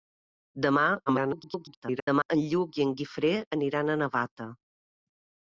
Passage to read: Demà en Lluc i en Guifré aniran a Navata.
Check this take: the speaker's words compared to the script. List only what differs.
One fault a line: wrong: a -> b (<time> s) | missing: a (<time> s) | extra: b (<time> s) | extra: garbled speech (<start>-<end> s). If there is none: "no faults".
extra: garbled speech (1.1-2.3 s)